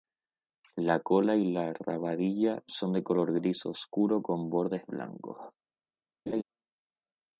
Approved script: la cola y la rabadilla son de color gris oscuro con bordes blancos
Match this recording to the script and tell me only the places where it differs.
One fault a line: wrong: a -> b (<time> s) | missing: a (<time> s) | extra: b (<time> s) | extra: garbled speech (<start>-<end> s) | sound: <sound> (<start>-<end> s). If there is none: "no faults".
sound: laugh (6.3-6.4 s)